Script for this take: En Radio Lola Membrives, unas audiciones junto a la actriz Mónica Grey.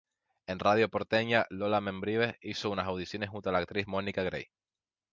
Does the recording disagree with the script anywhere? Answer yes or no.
yes